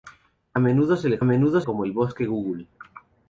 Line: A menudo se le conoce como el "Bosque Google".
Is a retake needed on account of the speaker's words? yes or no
yes